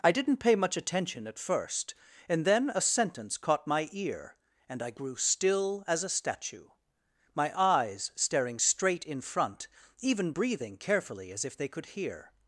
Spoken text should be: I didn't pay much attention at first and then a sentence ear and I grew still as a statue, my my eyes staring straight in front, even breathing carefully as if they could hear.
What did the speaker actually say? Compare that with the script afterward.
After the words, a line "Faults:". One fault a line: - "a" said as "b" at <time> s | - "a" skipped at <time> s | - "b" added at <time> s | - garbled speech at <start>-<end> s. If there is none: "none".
I didn't pay much attention at first and then a sentence caught my ear and I grew still as a statue, my eyes staring straight in front, even breathing carefully as if they could hear.
Faults:
- "caught my" added at 3.4 s
- "my" skipped at 7.5 s